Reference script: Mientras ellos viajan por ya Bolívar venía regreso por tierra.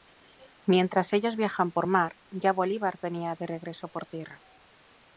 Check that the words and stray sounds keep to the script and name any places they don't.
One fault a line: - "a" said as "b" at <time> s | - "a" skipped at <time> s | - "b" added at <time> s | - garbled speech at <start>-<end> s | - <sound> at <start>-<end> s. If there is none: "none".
- "mar" added at 1.8 s
- "de" added at 3.3 s